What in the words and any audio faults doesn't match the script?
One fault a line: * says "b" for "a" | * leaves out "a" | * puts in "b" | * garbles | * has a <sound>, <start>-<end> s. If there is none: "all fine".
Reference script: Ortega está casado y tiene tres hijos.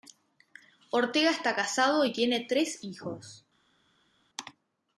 all fine